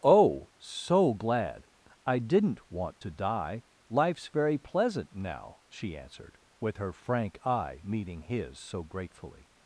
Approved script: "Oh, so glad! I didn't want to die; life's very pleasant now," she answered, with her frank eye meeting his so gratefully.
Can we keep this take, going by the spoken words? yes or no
yes